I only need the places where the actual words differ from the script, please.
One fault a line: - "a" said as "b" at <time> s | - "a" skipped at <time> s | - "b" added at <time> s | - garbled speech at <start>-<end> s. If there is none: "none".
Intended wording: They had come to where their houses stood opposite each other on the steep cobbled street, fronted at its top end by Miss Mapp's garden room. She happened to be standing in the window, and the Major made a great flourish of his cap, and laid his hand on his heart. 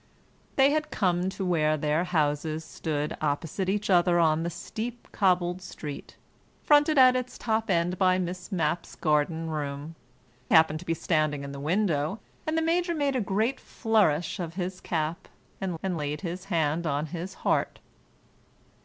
- "She" skipped at 9.9 s
- "and" added at 15.8 s